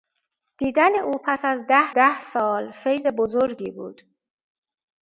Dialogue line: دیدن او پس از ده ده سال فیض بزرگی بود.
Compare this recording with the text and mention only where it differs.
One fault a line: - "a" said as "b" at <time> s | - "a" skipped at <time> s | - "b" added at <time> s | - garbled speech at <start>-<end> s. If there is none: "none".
none